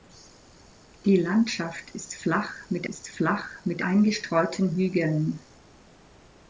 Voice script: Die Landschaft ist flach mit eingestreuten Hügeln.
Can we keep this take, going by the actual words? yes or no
no